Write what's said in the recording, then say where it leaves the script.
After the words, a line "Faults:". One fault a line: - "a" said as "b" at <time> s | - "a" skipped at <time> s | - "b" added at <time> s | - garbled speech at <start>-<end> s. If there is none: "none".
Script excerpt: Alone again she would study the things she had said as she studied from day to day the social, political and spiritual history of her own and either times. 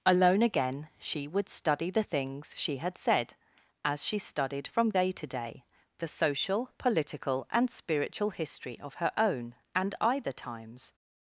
Alone again she would study the things she had said as she studied from day to day the social, political and spiritual history of her own and either times.
Faults:
none